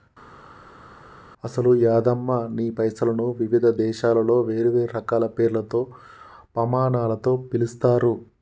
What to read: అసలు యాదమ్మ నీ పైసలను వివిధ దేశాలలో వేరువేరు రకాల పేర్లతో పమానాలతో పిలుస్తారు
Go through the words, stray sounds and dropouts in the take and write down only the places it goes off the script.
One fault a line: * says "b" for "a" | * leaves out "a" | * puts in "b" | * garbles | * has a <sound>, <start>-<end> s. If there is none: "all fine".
all fine